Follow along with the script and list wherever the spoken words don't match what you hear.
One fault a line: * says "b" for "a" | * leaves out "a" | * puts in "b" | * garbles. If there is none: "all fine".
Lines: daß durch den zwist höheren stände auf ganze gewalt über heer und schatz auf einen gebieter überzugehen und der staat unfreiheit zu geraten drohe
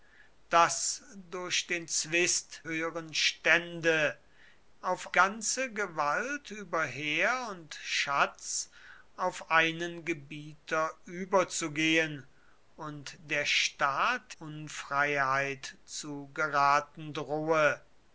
all fine